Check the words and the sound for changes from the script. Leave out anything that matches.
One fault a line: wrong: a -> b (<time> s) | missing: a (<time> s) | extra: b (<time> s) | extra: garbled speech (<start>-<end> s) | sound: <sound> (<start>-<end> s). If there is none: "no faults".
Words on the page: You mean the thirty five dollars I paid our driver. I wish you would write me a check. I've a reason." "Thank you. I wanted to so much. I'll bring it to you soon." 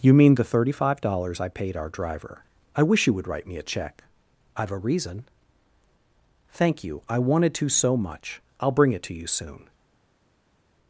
no faults